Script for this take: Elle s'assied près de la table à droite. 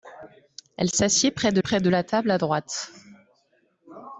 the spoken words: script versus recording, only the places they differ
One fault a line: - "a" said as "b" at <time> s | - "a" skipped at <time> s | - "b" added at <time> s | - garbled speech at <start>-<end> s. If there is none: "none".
- "près de" added at 1.6 s